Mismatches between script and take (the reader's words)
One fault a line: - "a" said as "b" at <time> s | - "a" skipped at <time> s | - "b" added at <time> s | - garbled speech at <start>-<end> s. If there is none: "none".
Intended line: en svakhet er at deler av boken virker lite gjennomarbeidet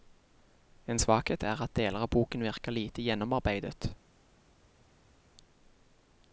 none